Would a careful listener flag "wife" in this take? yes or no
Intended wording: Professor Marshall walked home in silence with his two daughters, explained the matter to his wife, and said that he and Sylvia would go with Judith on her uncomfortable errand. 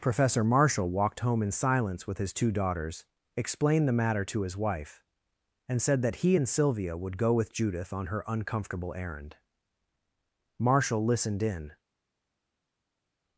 no